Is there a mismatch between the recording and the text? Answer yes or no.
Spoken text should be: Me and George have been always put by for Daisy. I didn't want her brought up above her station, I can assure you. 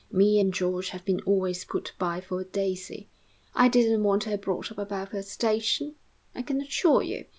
no